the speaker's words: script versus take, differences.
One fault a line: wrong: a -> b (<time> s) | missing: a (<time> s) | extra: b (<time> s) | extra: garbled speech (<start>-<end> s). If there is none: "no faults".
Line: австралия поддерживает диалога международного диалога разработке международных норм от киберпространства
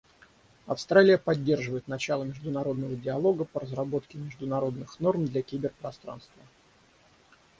wrong: диалога -> начало (1.9 s)
extra: по (3.5 s)
wrong: от -> для (5.3 s)